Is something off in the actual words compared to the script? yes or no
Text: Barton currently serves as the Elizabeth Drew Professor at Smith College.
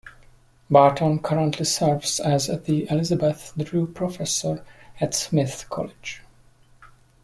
no